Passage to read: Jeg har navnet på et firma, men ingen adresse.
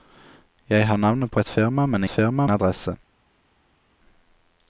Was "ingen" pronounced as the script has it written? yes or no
no